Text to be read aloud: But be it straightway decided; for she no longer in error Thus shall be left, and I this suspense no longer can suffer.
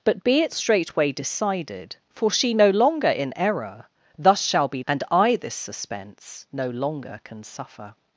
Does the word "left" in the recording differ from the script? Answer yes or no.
yes